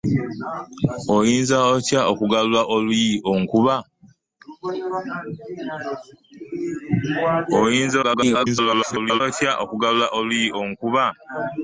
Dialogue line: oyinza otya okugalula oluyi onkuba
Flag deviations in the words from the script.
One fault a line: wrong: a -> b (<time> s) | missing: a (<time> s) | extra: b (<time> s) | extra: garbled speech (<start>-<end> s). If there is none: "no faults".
extra: garbled speech (8.0-9.2 s)